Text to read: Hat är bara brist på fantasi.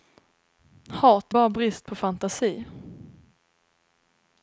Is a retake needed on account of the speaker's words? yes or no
no